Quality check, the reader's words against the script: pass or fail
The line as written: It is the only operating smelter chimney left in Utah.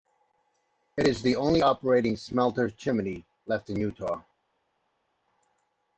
pass